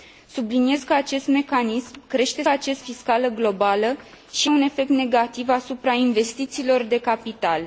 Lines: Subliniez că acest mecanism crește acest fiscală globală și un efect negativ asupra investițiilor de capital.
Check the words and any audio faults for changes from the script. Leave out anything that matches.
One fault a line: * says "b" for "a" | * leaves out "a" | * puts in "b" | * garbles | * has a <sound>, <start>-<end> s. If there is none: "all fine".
all fine